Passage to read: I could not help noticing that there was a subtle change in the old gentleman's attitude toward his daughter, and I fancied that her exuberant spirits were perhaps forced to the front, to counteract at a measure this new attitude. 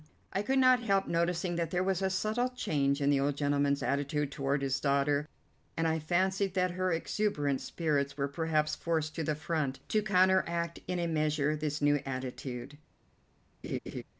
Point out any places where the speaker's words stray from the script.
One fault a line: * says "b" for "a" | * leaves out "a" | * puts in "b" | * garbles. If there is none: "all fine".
* says "in" for "at"